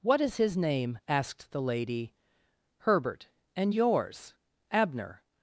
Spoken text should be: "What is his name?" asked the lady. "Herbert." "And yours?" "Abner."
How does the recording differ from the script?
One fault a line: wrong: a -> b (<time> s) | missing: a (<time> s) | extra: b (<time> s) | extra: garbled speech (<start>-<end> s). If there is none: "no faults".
no faults